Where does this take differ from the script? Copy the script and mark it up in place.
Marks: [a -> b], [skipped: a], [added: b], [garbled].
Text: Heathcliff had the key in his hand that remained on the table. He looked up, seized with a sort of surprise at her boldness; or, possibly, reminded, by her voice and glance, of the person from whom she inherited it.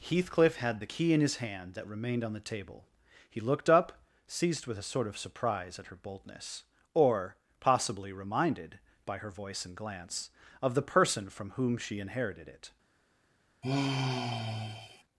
Heathcliff had the key in his hand that remained on the table. He looked up, seized with a sort of surprise at her boldness; or, possibly, reminded, by her voice and glance, of the person from whom she inherited it.